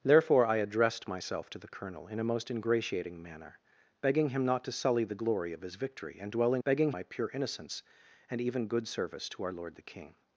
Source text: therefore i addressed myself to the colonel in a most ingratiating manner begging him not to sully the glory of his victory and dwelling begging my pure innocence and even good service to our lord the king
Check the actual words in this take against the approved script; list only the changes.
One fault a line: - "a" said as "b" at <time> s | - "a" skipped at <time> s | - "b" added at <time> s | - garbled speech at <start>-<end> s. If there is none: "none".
none